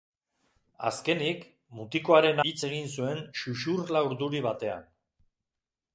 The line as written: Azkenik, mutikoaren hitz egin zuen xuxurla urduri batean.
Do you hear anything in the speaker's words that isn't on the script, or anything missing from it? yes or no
no